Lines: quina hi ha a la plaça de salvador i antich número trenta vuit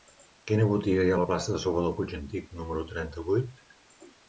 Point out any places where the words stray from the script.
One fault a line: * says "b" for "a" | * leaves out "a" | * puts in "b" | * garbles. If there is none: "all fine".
* puts in "botiga"
* puts in "puig"